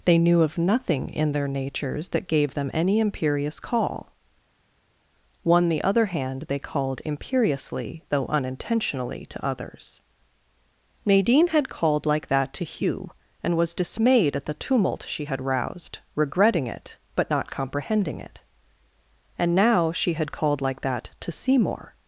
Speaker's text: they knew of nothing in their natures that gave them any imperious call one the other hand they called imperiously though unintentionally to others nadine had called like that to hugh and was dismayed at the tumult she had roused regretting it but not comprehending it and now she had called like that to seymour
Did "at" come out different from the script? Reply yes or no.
no